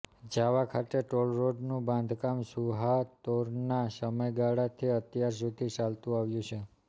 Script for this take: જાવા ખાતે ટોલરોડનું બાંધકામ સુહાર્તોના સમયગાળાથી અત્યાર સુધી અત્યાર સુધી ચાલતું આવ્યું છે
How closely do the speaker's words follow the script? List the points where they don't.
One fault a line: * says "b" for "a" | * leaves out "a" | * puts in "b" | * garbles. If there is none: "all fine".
* leaves out "અત્યાર સુધી"